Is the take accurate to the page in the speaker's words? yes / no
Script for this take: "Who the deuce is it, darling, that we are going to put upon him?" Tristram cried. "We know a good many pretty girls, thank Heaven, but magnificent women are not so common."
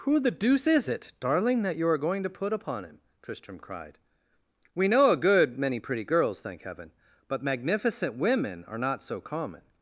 no